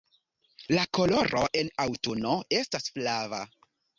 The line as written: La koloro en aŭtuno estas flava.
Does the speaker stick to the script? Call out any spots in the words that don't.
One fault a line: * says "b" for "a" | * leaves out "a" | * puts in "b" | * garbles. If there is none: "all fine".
all fine